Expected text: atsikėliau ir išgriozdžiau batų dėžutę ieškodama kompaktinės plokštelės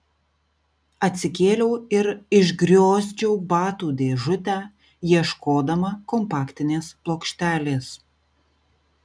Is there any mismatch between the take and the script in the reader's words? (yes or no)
no